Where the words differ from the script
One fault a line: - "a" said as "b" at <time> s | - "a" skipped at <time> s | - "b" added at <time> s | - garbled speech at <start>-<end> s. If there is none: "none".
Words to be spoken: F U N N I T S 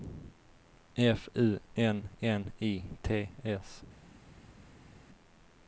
none